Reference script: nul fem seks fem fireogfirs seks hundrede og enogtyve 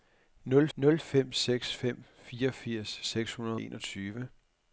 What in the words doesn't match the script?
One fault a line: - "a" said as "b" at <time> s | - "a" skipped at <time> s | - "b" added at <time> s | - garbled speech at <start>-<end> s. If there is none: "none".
- "nul" added at 0.7 s
- "og" skipped at 3.6 s